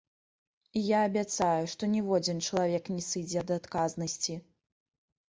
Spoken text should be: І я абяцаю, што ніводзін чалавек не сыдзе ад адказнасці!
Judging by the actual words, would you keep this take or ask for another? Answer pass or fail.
pass